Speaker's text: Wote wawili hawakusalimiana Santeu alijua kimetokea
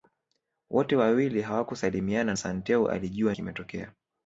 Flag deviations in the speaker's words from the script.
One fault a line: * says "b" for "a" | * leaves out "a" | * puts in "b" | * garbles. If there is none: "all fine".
all fine